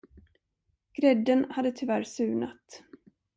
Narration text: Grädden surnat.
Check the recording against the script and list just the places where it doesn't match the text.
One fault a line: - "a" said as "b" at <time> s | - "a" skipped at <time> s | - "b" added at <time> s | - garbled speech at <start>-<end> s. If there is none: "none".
- "hade tyvärr" added at 1.5 s